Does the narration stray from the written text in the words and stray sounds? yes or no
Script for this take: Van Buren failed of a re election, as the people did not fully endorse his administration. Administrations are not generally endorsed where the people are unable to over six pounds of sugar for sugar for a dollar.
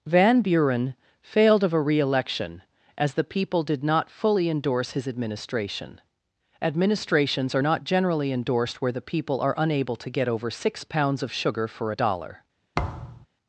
yes